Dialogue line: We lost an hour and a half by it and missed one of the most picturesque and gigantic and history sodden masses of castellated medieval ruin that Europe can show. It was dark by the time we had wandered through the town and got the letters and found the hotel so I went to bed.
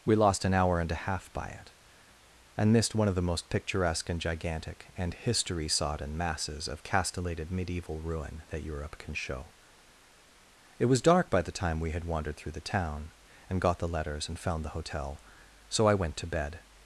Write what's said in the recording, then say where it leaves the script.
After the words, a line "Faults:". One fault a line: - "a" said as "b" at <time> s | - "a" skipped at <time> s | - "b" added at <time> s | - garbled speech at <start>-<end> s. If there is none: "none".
We lost an hour and a half by it and missed one of the most picturesque and gigantic and history sodden masses of castellated medieval ruin that Europe can show. It was dark by the time we had wandered through the town and got the letters and found the hotel so I went to bed.
Faults:
none